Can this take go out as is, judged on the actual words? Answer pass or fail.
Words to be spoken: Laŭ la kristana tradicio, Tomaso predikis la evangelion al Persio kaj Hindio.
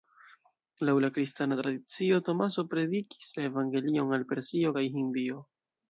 pass